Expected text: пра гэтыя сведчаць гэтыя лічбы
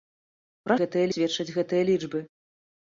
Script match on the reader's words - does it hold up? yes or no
yes